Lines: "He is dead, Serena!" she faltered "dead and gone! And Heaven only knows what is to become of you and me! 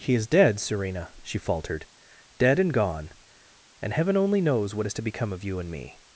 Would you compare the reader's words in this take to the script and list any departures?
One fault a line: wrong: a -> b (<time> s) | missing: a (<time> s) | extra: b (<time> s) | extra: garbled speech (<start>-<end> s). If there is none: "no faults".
no faults